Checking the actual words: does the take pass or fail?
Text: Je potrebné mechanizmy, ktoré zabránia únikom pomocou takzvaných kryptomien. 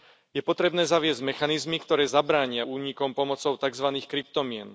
fail